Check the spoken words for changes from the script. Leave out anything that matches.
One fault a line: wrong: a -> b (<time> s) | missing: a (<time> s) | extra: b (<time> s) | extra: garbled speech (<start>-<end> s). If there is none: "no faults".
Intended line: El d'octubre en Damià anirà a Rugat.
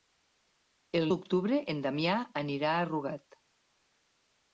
no faults